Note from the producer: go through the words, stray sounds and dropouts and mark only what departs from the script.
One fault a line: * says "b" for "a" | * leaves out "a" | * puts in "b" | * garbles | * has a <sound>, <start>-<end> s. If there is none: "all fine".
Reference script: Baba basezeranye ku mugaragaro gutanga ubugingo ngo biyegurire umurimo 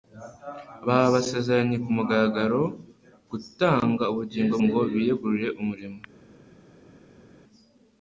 all fine